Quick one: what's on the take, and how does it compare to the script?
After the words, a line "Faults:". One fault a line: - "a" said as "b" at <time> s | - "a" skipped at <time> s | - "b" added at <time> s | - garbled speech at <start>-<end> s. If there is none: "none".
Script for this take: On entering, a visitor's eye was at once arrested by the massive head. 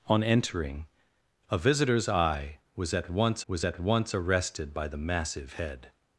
On entering, a visitor's eye was at once was at once arrested by the massive head.
Faults:
- "was at once" added at 3.5 s